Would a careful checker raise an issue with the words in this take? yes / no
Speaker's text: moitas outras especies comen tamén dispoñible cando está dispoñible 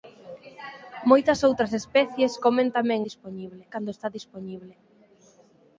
no